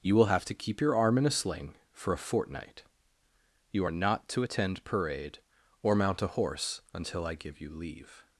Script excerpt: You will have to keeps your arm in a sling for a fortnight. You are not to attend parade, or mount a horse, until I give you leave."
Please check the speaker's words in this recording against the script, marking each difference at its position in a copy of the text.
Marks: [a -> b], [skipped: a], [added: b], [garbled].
You will have to [keeps -> keep] your arm in a sling for a fortnight. You are not to attend parade, or mount a horse, until I give you leave."